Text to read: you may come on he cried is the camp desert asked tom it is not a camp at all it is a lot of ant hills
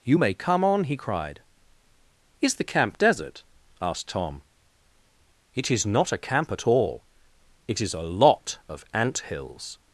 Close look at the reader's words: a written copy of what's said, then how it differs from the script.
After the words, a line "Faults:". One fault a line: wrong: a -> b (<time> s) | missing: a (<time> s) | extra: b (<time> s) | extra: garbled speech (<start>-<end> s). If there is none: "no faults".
you may come on he cried is the camp desert asked tom it is not a camp at all it is a lot of ant hills
Faults:
no faults